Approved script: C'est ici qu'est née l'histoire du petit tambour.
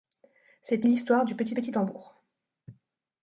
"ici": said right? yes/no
no